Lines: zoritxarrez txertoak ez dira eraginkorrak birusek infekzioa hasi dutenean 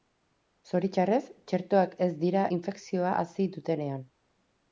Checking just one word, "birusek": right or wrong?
wrong